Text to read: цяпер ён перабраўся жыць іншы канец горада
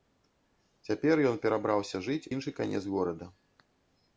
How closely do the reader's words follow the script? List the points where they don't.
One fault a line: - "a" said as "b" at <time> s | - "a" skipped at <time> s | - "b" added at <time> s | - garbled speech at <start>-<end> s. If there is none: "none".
none